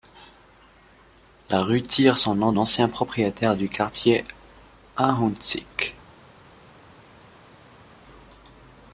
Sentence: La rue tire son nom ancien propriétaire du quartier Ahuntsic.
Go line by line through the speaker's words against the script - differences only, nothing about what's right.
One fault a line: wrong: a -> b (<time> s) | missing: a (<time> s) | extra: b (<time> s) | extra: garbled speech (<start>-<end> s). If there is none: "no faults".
no faults